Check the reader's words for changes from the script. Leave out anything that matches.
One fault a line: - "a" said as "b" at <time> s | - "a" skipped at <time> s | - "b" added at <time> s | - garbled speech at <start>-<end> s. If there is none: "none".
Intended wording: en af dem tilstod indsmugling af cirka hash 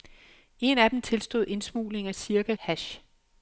none